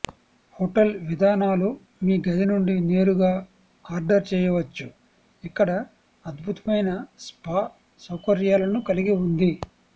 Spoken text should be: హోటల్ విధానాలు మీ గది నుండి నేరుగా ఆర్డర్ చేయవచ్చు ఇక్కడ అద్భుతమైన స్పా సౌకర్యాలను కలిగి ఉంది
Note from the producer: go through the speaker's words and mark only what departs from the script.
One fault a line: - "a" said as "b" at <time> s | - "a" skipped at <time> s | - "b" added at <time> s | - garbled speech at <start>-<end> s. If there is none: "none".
none